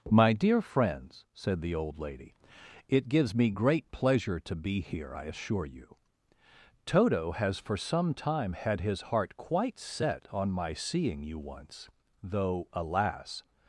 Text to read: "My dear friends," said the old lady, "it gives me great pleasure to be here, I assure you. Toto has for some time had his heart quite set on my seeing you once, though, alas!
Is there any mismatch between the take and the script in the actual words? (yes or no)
no